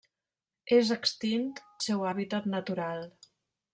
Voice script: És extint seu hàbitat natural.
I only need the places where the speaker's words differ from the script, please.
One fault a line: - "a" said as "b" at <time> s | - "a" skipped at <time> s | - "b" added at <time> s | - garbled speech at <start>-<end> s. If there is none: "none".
none